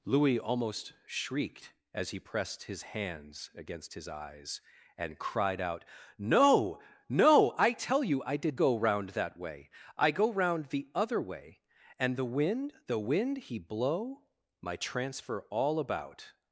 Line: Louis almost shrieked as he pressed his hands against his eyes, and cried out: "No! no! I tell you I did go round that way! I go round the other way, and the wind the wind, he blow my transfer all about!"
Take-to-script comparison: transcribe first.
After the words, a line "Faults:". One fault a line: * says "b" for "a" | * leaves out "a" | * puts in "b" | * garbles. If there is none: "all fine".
Louis almost shrieked as he pressed his hands against his eyes, and cried out: "No! no! I tell you I did go round that way! I go round the other way, and the wind the wind, he blow my transfer all about!"
Faults:
all fine